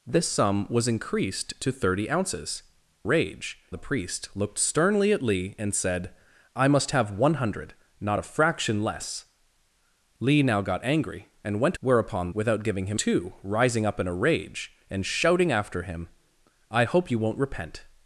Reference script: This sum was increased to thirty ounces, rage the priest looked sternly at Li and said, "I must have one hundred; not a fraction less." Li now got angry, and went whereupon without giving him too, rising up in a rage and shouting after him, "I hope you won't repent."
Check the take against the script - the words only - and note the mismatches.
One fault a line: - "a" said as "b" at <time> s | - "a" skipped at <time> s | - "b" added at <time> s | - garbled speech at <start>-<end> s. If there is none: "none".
none